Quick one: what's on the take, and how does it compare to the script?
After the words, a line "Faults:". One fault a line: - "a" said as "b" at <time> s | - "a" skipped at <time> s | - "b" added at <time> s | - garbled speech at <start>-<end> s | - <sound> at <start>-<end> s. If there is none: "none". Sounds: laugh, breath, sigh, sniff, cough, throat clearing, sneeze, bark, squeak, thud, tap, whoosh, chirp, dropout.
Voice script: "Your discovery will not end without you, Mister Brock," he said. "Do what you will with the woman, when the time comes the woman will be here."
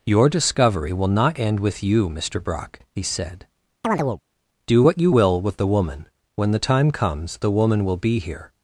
"Your discovery will not end with you, Mister Brock," he said. "Do what you will with the woman, when the time comes the woman will be here."
Faults:
- "without" said as "with" at 1.6 s
- chirp at 3.8-4.2 s